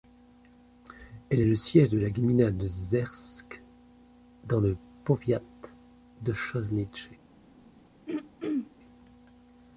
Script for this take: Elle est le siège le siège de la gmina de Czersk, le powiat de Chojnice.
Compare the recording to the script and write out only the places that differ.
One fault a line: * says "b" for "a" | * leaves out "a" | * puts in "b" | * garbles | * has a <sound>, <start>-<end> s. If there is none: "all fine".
* leaves out "le siège"
* puts in "dans"
* has a throat clearing, 8.1-8.7 s